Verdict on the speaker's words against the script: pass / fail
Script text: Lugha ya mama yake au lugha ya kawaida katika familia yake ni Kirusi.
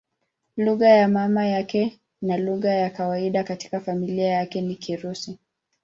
fail